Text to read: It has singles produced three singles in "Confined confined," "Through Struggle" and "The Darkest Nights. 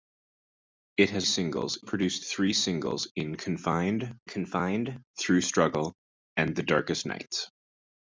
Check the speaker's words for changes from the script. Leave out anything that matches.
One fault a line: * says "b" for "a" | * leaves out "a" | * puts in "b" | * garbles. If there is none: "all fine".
all fine